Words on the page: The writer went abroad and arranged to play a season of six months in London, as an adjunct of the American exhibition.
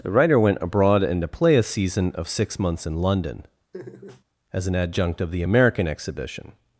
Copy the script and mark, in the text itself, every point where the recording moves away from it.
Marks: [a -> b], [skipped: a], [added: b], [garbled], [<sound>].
The writer went abroad and [skipped: arranged] to play a season of six months in London, [laugh] as an adjunct of the American exhibition.